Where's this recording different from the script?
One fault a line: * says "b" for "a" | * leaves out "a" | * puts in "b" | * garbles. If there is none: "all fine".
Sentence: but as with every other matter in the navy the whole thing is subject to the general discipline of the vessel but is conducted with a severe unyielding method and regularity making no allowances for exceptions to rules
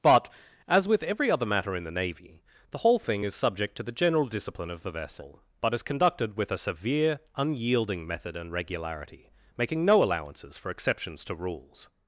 all fine